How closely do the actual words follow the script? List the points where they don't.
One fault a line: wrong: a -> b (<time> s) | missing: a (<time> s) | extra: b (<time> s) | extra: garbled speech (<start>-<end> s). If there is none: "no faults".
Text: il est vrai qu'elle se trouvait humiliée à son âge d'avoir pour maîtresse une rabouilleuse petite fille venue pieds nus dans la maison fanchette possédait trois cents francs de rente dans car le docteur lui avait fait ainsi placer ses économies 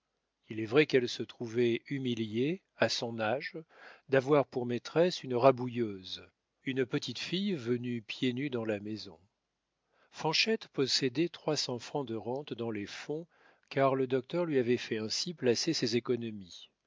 extra: une (6.6 s)
extra: les fonds (12.7 s)